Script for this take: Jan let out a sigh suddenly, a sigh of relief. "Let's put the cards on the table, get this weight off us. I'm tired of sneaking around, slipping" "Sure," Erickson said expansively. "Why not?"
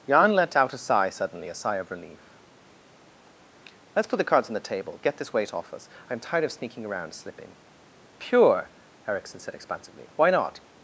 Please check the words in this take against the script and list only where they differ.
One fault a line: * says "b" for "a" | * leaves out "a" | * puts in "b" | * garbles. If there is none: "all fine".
* says "Pure" for "Sure"